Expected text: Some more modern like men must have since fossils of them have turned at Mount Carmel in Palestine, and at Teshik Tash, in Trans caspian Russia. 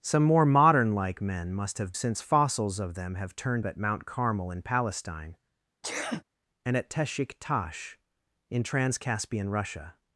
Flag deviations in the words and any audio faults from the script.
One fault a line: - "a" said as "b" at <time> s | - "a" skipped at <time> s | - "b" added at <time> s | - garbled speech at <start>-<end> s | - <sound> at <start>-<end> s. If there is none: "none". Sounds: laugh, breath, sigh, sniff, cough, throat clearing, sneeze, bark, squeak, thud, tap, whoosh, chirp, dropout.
- sneeze at 5.8-6.2 s